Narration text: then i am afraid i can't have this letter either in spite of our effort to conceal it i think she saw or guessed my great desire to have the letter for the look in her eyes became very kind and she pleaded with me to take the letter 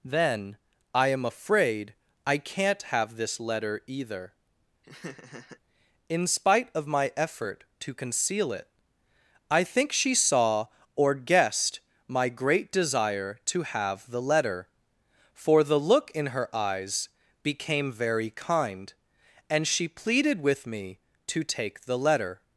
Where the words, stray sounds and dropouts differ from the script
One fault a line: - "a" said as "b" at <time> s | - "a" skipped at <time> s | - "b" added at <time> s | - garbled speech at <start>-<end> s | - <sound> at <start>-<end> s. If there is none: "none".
- laugh at 4.8-5.6 s
- "our" said as "my" at 6.9 s